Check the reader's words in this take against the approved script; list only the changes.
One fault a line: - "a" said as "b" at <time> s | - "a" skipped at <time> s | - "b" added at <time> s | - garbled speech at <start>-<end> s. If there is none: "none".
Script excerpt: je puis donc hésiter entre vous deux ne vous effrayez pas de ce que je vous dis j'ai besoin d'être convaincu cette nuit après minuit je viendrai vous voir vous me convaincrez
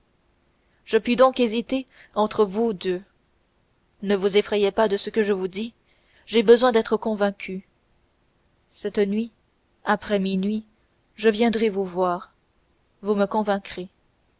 none